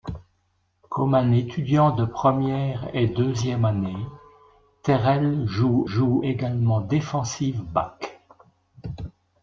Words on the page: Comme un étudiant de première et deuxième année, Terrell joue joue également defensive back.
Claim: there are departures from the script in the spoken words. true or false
false